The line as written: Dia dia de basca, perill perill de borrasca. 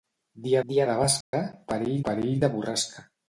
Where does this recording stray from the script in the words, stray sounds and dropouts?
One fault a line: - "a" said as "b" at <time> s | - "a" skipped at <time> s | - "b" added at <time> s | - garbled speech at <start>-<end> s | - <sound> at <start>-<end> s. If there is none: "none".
- dropout at 1.2-1.3 s